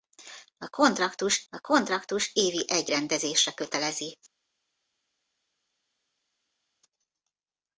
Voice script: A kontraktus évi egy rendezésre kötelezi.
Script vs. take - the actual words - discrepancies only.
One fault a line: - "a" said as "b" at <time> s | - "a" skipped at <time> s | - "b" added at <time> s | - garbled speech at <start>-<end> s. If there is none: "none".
- "a kontraktus" added at 1.5 s